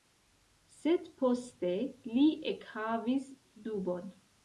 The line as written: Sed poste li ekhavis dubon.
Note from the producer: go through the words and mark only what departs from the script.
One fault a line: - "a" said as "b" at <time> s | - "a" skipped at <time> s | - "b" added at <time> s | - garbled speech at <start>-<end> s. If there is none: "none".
none